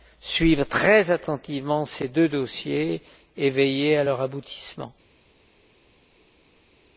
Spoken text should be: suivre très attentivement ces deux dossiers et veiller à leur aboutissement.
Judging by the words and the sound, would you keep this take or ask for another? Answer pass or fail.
pass